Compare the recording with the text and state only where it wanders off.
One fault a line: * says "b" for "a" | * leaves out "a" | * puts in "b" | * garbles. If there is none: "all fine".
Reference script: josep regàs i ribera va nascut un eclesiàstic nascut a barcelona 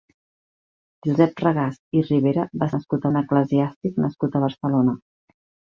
all fine